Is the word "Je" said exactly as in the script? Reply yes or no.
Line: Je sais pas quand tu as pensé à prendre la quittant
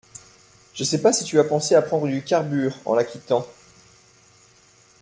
yes